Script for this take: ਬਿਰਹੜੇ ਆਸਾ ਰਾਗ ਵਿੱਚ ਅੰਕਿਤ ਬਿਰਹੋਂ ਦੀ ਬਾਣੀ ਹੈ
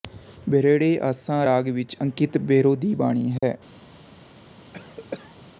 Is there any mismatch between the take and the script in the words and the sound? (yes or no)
yes